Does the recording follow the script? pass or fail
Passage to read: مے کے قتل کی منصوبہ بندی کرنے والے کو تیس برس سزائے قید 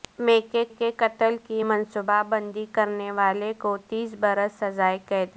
fail